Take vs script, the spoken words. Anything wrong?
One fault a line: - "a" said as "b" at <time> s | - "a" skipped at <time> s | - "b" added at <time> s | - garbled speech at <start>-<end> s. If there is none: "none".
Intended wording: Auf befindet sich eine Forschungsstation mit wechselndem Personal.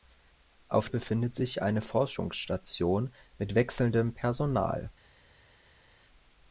none